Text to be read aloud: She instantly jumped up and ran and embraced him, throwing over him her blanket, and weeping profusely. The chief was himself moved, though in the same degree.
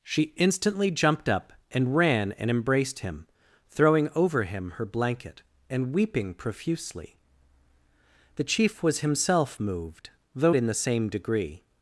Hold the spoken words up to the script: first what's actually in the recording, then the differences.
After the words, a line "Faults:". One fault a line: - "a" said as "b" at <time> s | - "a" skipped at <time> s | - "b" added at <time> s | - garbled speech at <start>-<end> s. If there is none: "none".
She instantly jumped up and ran and embraced him, throwing over him her blanket, and weeping profusely. The chief was himself moved, though in the same degree.
Faults:
none